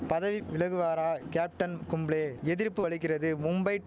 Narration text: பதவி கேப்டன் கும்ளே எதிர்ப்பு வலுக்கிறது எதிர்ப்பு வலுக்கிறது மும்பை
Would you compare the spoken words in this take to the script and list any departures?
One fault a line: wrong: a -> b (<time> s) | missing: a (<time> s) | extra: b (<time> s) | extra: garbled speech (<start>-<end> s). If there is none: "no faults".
extra: விலகுவாரா (0.5 s)
missing: எதிர்ப்பு வலுக்கிறது (3.3 s)